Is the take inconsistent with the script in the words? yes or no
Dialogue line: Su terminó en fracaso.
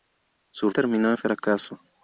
no